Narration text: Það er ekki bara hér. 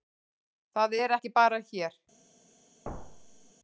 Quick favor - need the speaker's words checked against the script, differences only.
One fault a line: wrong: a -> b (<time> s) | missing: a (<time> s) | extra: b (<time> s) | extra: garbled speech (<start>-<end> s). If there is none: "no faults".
no faults